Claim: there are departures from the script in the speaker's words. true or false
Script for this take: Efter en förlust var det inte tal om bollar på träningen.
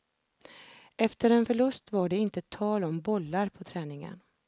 false